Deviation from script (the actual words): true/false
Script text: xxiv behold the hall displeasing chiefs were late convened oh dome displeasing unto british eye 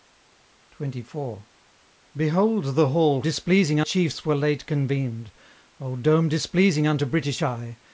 false